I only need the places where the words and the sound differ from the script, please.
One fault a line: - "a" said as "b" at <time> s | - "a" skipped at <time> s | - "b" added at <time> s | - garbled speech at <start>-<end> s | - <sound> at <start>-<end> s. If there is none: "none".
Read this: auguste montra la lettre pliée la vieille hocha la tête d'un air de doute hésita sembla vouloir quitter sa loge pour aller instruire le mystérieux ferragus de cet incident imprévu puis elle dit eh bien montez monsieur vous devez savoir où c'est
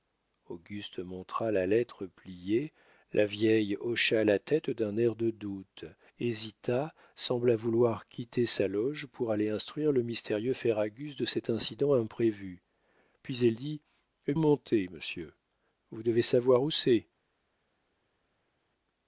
- "bien" skipped at 14.3 s